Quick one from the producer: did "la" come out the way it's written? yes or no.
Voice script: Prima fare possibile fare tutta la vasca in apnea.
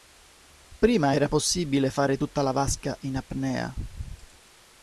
yes